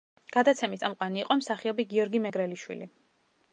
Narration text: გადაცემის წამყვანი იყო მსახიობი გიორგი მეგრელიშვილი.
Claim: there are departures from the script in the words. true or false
false